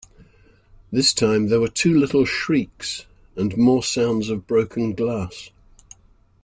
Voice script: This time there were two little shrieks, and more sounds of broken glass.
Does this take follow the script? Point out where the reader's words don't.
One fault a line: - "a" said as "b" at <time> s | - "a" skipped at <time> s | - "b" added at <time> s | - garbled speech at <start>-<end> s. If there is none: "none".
none